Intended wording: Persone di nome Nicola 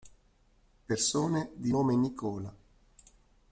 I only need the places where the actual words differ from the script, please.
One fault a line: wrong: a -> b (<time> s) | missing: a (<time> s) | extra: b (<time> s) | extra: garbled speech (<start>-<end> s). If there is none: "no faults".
no faults